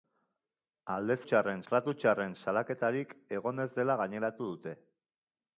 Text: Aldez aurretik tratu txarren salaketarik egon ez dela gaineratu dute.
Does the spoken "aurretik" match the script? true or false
false